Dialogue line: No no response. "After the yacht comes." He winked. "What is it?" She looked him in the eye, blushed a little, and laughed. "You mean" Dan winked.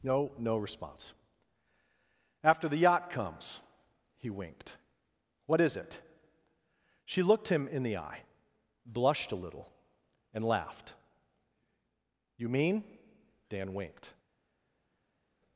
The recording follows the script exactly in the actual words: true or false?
true